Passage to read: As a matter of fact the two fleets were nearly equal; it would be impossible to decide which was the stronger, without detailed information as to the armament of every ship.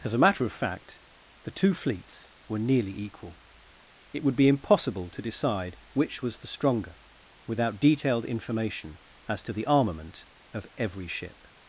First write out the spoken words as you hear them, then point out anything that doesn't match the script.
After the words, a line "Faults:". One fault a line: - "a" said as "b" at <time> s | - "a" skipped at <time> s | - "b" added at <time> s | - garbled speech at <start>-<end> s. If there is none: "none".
As a matter of fact the two fleets were nearly equal; it would be impossible to decide which was the stronger, without detailed information as to the armament of every ship.
Faults:
none